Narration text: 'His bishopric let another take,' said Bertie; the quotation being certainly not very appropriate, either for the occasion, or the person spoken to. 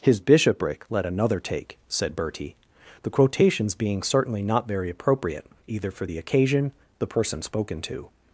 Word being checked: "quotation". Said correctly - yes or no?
no